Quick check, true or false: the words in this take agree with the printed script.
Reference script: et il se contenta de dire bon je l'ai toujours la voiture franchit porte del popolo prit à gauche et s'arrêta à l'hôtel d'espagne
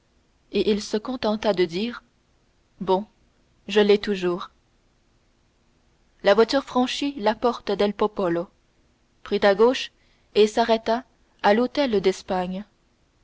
false